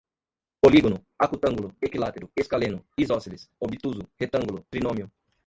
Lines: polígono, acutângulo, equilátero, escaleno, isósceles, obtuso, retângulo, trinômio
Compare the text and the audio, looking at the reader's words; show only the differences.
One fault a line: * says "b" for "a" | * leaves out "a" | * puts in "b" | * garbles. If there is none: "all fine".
all fine